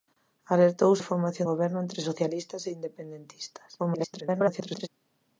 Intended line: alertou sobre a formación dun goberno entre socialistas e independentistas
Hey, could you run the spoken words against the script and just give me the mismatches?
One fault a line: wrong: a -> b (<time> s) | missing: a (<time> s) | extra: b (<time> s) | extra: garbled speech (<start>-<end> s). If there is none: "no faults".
missing: sobre (0.9 s)
missing: dun (1.5 s)
extra: garbled speech (3.8-4.9 s)